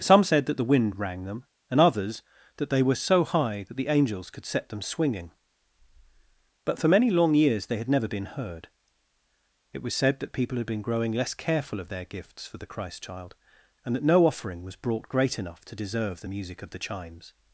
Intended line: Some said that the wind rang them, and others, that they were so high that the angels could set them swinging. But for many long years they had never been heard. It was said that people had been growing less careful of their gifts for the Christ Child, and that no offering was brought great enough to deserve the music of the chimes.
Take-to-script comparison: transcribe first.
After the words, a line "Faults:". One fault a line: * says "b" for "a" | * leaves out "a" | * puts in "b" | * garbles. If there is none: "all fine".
Some said that the wind rang them, and others, that they were so high that the angels could set them swinging. But for many long years they had never been heard. It was said that people had been growing less careful of their gifts for the Christ Child, and that no offering was brought great enough to deserve the music of the chimes.
Faults:
all fine